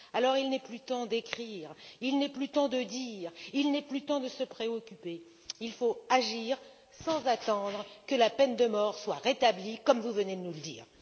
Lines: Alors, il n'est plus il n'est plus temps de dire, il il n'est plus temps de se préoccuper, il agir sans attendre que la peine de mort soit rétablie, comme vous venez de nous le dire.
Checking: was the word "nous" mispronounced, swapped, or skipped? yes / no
no